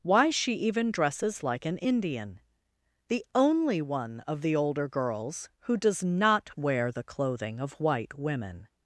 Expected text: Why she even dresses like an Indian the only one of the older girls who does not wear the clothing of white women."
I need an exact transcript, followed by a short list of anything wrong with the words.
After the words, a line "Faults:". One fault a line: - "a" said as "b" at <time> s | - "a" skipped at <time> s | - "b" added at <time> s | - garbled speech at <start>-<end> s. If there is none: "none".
Why she even dresses like an Indian the only one of the older girls who does not wear the clothing of white women."
Faults:
none